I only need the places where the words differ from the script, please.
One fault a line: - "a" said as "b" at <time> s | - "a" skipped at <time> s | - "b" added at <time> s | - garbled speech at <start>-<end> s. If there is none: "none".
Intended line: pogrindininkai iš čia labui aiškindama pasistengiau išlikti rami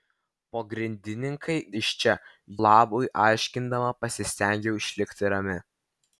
none